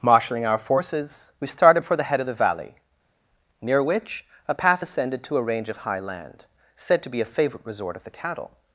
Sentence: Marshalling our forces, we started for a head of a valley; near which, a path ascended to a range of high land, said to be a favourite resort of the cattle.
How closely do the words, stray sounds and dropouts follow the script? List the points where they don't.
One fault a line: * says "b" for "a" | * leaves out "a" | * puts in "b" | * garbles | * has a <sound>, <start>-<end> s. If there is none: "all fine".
* says "the" for "a"
* says "the" for "a"